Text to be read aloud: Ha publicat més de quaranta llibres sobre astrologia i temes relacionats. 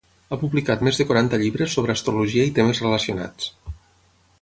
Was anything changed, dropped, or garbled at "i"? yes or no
no